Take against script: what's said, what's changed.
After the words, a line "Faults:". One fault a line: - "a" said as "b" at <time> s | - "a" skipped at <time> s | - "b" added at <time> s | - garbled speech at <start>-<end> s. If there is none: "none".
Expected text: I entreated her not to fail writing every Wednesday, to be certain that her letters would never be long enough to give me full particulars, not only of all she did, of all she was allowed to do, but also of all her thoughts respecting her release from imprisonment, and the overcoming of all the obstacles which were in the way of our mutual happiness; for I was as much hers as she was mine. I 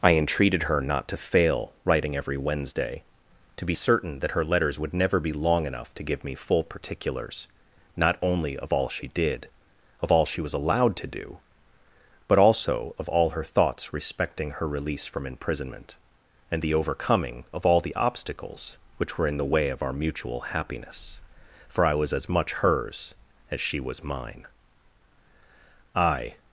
I entreated her not to fail writing every Wednesday, to be certain that her letters would never be long enough to give me full particulars, not only of all she did, of all she was allowed to do, but also of all her thoughts respecting her release from imprisonment, and the overcoming of all the obstacles which were in the way of our mutual happiness; for I was as much hers as she was mine. I
Faults:
none